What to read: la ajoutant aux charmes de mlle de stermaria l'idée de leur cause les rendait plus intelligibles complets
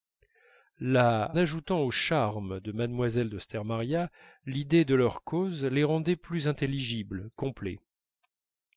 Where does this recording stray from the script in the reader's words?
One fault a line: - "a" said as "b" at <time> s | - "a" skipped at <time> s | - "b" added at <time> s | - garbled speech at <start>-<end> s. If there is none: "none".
none